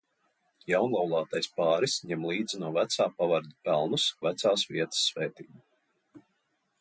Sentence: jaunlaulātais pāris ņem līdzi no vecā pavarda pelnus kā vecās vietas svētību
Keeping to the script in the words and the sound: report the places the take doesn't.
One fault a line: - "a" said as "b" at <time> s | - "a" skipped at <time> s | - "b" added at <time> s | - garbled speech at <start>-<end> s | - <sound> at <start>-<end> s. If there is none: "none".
- "kā" skipped at 4.1 s